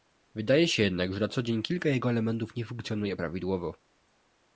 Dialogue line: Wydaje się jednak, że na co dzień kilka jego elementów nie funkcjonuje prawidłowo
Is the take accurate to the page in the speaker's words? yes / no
yes